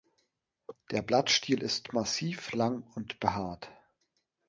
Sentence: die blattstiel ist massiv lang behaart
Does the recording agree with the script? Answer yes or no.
no